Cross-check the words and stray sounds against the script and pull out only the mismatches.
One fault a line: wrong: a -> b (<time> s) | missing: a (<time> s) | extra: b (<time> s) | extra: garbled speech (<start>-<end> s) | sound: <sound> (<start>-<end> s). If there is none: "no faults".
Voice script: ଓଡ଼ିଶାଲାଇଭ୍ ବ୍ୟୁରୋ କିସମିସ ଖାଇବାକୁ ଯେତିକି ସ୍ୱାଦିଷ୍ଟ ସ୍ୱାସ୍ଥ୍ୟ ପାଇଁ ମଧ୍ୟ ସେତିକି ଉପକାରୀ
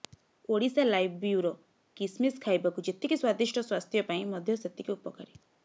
no faults